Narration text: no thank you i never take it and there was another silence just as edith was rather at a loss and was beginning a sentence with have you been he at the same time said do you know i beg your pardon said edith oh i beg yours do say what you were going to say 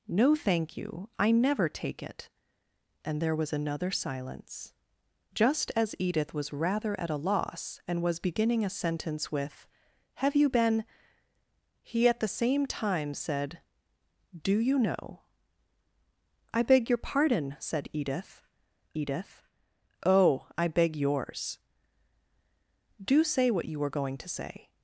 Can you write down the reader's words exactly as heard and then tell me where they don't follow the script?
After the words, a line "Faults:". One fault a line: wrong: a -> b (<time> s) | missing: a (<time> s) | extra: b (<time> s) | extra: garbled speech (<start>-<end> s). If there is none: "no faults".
no thank you i never take it and there was another silence just as edith was rather at a loss and was beginning a sentence with have you been he at the same time said do you know i beg your pardon said edith edith oh i beg yours do say what you were going to say
Faults:
extra: edith (18.9 s)